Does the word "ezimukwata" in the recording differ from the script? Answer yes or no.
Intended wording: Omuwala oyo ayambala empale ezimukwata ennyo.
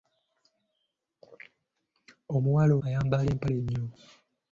yes